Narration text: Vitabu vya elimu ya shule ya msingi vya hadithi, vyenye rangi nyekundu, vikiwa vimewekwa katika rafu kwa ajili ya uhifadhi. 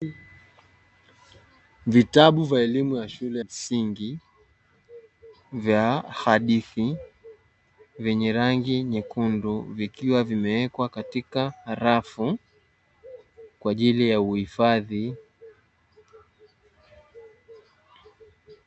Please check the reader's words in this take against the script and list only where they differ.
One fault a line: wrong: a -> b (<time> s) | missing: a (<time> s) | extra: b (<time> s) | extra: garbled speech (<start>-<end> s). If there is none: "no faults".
missing: ya (3.4 s)